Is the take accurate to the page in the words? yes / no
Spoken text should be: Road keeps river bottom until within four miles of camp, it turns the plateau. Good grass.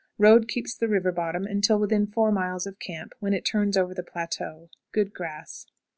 no